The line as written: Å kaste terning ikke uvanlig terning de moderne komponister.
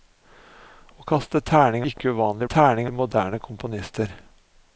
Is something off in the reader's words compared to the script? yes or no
no